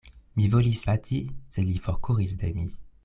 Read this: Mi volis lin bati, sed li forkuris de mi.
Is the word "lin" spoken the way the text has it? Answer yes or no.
no